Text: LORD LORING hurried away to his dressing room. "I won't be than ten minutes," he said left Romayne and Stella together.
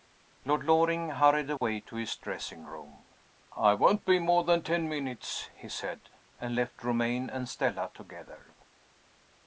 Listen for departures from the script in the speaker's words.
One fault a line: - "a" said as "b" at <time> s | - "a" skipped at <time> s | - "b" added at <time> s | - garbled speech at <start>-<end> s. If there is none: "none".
- "more" added at 4.2 s
- "and" added at 6.4 s